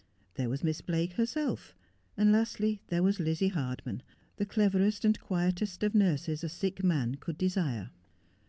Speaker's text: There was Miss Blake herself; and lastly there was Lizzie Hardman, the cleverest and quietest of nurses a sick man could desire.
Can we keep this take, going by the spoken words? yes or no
yes